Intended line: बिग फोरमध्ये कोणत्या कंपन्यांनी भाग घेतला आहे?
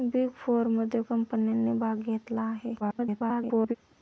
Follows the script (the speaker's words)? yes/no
no